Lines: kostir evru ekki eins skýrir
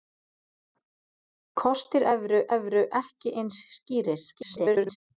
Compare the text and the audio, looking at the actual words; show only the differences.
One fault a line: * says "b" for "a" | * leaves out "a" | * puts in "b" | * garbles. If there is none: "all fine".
* puts in "evru"
* garbles